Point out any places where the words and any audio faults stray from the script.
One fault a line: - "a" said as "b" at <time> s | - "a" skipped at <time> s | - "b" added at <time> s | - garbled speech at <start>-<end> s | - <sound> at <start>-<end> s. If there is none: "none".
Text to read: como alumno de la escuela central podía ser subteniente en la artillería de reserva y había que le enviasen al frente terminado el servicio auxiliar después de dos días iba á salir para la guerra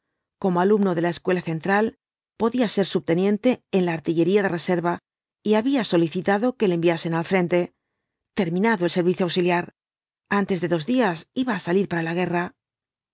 - "solicitado" added at 5.8 s
- "después" said as "antes" at 10.4 s